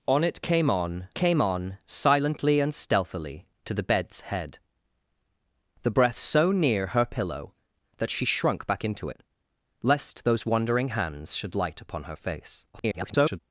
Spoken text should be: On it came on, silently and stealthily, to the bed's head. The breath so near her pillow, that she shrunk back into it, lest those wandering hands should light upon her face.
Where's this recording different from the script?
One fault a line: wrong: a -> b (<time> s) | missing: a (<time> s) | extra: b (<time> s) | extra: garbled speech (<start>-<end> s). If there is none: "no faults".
extra: came on (1.1 s)
extra: garbled speech (12.7-13.4 s)